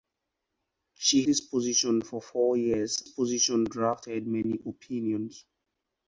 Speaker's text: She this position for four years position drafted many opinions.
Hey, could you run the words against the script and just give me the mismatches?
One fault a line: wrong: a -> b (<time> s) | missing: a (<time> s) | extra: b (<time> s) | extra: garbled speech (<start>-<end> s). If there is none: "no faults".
no faults